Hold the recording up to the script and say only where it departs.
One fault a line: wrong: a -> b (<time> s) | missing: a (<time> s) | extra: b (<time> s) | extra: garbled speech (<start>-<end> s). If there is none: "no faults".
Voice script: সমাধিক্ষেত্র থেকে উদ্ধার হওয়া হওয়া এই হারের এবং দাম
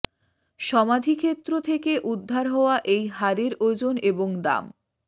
missing: হওয়া (2.8 s)
extra: ওজন (3.6 s)